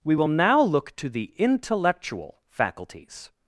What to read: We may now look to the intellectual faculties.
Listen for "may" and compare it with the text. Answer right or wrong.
wrong